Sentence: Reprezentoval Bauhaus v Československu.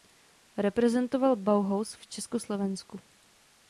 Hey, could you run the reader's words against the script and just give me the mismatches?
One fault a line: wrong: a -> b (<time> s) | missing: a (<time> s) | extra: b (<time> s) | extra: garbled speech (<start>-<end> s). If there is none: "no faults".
no faults